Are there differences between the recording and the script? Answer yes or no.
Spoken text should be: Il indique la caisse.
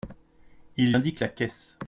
no